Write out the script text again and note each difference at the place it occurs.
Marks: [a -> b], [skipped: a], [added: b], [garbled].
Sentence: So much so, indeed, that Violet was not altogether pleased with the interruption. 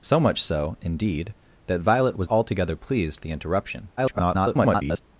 So much so, indeed, that Violet was [skipped: not] altogether pleased [skipped: with] the interruption. [garbled]